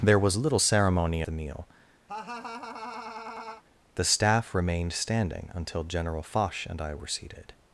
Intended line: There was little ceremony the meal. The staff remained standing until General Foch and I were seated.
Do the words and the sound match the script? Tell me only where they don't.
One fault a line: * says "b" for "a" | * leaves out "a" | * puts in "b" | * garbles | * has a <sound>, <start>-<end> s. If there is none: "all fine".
* has a laugh, 2.1-3.6 s